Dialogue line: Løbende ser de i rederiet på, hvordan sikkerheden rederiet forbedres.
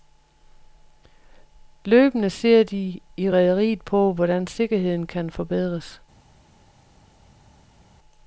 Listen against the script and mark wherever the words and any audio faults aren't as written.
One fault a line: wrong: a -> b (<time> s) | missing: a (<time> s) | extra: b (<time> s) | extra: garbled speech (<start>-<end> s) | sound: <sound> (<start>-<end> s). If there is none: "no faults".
wrong: rederiet -> kan (5.1 s)